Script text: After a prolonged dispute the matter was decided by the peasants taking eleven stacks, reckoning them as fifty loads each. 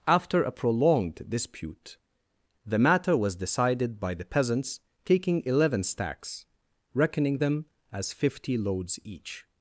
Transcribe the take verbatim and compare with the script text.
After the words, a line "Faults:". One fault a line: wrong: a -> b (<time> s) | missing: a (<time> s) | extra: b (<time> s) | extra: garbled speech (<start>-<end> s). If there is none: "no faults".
After a prolonged dispute the matter was decided by the peasants taking eleven stacks, reckoning them as fifty loads each.
Faults:
no faults